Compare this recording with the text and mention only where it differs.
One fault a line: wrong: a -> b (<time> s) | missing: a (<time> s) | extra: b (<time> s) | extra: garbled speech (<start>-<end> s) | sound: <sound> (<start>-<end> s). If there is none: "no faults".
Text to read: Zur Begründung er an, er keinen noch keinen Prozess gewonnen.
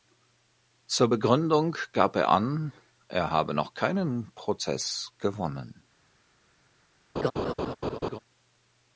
extra: gab (1.9 s)
wrong: keinen -> habe (3.3 s)
sound: laugh (7.2-8.2 s)